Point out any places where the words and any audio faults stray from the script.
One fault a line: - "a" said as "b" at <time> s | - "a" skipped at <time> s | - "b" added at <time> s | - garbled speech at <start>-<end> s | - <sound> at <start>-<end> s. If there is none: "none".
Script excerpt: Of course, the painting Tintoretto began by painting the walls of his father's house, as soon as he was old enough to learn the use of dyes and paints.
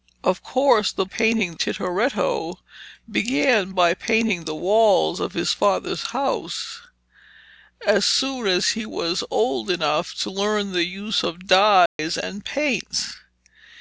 - dropout at 11.9-12.0 s